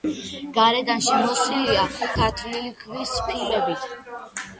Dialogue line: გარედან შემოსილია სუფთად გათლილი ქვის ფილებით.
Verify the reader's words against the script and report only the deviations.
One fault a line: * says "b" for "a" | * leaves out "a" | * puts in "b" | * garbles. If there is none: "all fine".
* leaves out "სუფთად"